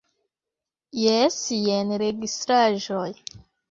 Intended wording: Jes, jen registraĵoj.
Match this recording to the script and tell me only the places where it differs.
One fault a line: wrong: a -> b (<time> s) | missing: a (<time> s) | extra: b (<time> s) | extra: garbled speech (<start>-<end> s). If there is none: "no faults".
no faults